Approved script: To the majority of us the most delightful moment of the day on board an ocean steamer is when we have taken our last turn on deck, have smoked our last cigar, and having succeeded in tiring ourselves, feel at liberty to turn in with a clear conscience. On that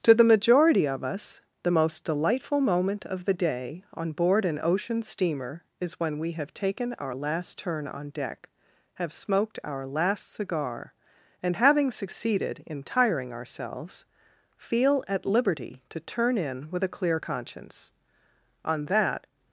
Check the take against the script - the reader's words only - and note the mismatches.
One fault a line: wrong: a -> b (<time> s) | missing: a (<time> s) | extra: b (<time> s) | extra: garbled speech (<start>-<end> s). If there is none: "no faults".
no faults